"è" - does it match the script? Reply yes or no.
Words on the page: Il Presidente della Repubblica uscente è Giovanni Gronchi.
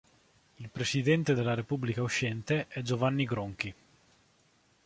yes